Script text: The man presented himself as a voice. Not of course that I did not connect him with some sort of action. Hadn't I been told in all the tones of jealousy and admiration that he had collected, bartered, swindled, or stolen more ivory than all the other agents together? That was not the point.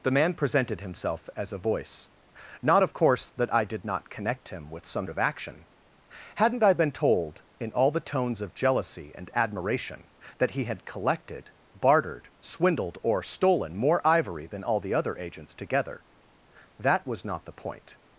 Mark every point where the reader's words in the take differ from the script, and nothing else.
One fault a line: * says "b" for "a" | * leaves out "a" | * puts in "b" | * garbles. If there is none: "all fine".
* leaves out "sort"